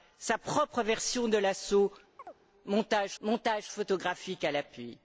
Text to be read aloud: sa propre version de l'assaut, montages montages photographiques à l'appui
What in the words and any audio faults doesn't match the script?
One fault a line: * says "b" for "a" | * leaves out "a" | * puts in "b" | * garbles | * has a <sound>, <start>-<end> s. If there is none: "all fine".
* has a chirp, 2.2-2.4 s